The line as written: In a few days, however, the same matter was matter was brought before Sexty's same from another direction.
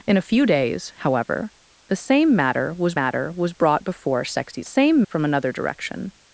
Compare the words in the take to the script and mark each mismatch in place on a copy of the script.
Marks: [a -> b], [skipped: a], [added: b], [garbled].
In a few days, however, the same matter was matter was brought before Sexty's same from another direction.